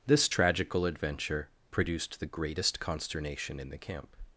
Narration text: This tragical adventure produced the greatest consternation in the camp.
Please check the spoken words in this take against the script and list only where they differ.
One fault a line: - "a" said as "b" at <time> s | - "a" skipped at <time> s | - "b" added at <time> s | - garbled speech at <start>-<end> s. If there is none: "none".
none